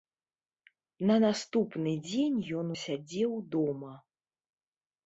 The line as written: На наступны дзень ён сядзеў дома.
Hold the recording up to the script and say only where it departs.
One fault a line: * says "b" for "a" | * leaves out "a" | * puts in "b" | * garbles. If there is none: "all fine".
all fine